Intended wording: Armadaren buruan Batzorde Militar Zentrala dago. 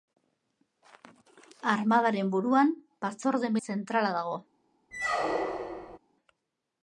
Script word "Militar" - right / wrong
wrong